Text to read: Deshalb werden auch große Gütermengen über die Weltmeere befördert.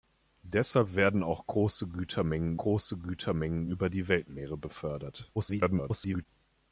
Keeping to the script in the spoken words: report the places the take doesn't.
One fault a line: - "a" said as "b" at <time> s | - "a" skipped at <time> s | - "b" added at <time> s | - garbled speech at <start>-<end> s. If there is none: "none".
- "große Gütermengen" added at 2.5 s
- garbled speech at 5.3-6.3 s